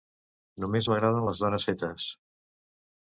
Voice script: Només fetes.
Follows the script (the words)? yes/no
no